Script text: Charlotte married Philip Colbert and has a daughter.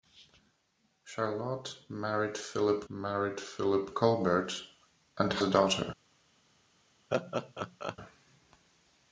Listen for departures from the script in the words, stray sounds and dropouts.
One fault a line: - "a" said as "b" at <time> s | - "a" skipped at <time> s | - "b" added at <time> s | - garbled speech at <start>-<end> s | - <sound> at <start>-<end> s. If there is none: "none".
- "married Philip" added at 2.9 s
- "has" skipped at 5.3 s
- laugh at 7.1-8.0 s